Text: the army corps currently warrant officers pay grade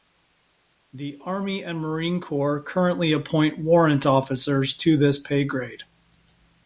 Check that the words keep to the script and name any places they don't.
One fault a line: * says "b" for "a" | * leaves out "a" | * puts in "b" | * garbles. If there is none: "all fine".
* puts in "and marine"
* puts in "appoint"
* puts in "to this"